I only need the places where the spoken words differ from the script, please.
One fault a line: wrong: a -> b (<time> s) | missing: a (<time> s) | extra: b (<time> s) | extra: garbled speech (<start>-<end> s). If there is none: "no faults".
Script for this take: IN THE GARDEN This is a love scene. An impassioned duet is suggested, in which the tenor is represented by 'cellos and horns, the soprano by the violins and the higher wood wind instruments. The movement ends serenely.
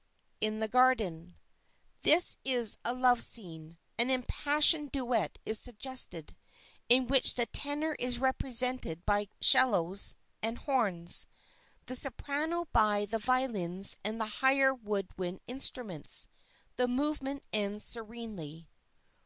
no faults